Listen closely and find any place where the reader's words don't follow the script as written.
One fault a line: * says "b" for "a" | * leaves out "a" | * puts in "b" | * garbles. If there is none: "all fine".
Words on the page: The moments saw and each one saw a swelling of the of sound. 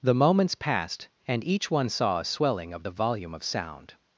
* says "passed" for "saw"
* puts in "volume"